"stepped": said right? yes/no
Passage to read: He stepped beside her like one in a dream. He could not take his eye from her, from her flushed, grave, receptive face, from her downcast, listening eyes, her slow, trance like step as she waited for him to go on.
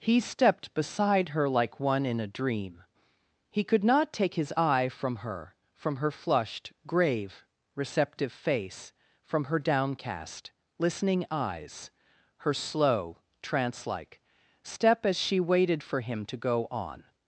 yes